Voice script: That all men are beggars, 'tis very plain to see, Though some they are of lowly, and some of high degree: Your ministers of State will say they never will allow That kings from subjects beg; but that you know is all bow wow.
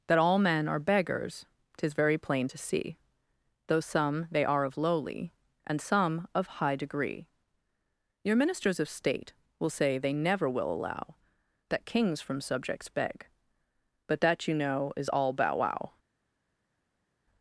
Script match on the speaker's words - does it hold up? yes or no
yes